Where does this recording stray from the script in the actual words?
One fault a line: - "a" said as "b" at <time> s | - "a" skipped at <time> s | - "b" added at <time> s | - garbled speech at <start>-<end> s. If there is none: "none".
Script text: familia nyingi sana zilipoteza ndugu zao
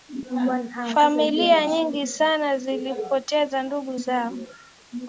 none